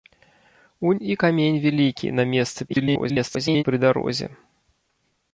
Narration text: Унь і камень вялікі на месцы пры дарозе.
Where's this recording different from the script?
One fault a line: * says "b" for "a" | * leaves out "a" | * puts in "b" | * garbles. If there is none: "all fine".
* garbles